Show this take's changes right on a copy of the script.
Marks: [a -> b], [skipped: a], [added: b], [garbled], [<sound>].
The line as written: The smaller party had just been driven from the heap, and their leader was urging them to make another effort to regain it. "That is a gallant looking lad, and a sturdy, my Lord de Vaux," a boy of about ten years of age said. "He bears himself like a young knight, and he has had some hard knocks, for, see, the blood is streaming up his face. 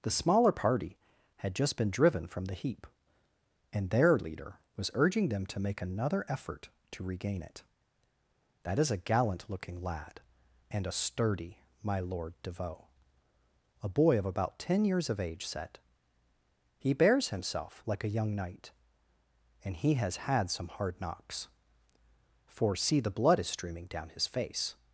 The smaller party had just been driven from the heap, and their leader was urging them to make another effort to regain it. "That is a gallant looking lad, and a sturdy, my Lord de Vaux," a boy of about ten years of age said. "He bears himself like a young knight, and he has had some hard knocks, for, see, the blood is streaming [up -> down] his face.